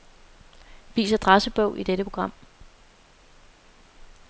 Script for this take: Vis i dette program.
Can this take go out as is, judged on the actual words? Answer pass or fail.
fail